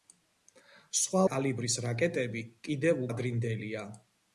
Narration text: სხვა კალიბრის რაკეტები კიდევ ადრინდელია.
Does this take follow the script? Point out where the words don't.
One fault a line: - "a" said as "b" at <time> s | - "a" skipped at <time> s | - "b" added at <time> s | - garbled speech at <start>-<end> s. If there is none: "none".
none